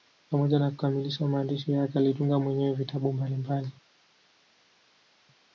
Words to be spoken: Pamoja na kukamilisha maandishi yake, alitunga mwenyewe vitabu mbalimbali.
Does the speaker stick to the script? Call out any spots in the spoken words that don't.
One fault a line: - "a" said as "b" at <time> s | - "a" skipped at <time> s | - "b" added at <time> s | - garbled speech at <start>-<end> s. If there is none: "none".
none